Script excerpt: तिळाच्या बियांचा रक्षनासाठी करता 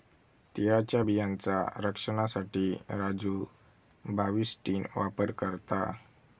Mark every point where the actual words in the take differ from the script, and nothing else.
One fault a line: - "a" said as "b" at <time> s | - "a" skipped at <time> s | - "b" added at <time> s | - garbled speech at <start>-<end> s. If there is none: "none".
- "राजू बाविस्टीन वापर" added at 2.9 s